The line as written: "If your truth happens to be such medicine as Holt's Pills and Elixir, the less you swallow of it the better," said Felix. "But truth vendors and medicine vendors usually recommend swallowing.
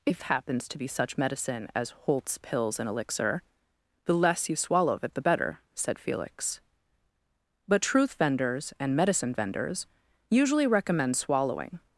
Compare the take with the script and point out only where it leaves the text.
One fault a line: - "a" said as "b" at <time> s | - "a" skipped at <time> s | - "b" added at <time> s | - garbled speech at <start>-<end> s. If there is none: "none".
- "your truth" skipped at 0.2 s